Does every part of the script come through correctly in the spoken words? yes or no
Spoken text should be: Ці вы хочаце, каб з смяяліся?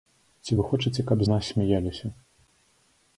no